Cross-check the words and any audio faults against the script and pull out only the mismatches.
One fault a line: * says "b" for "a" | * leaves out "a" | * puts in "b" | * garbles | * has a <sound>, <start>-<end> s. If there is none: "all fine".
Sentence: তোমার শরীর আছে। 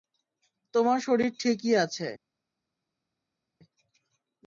* puts in "ঠিকই"